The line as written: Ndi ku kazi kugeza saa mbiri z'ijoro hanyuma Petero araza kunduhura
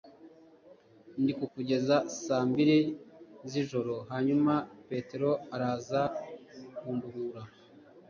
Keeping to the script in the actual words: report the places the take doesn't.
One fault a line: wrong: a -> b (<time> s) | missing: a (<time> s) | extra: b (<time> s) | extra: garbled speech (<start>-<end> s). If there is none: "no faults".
missing: kazi (1.4 s)